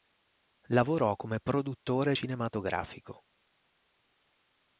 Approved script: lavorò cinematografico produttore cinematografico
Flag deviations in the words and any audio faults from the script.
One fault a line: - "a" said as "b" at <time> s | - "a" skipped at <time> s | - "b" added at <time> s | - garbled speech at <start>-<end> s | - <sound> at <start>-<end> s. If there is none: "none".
- "cinematografico" said as "come" at 1.1 s